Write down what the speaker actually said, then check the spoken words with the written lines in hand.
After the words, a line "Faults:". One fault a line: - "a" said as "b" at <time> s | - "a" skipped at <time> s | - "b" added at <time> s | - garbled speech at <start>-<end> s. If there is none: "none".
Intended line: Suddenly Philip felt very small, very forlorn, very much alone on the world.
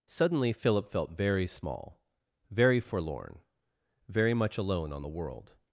Suddenly Philip felt very small, very forlorn, very much alone on the world.
Faults:
none